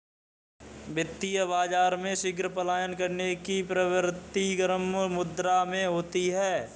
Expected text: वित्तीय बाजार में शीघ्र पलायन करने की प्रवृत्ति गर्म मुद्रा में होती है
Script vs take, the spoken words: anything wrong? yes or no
no